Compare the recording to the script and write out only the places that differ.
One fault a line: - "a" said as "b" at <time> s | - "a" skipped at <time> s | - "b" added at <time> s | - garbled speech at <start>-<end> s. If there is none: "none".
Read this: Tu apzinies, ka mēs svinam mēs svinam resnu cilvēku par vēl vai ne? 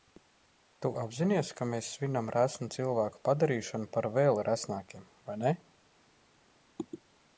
- "mēs svinam" skipped at 2.3 s
- "padarīšanu" added at 3.3 s
- "resnākiem" added at 4.5 s